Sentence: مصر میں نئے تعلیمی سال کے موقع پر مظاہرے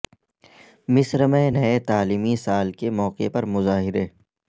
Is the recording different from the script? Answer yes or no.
no